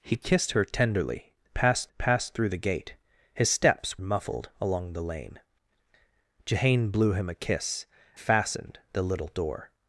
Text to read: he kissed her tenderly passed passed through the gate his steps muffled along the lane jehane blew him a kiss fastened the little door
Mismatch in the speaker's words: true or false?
false